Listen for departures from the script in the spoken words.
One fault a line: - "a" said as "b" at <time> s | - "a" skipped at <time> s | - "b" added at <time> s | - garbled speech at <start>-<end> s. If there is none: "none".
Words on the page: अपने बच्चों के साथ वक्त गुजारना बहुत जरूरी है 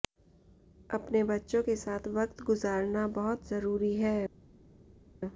none